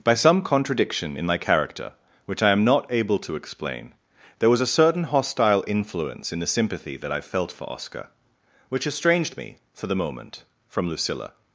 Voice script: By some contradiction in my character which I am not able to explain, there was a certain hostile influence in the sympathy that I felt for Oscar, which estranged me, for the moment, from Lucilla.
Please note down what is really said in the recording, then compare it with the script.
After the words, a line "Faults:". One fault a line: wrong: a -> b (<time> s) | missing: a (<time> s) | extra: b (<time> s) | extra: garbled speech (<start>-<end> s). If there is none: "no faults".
By some contradiction in my character which I am not able to explain, there was a certain hostile influence in the sympathy that I felt for Oscar, which estranged me, for the moment, from Lucilla.
Faults:
no faults